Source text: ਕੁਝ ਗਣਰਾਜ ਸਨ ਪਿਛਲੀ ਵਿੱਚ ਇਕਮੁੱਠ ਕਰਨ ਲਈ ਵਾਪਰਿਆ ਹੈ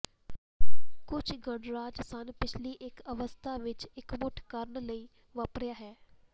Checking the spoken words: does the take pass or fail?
fail